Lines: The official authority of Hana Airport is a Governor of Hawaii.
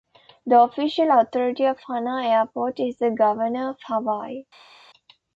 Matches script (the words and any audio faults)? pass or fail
fail